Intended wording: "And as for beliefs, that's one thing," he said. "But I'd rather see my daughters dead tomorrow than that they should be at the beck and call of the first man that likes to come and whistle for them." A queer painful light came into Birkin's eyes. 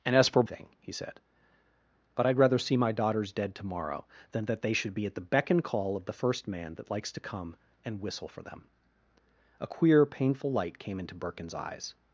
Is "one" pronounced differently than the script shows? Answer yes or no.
yes